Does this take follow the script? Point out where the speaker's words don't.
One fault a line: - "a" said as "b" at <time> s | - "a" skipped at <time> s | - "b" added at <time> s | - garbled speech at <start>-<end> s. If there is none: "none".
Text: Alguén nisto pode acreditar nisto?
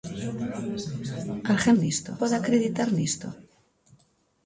none